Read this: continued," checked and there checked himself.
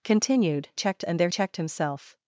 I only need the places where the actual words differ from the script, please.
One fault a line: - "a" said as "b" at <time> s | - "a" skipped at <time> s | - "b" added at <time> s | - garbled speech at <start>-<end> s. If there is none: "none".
none